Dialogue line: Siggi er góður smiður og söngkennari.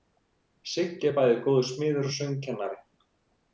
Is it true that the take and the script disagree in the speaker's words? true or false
true